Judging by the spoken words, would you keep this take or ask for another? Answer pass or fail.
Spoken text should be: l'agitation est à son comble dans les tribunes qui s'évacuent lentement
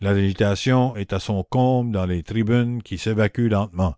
pass